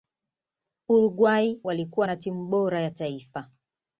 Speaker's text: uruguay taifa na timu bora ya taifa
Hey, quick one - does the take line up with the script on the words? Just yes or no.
no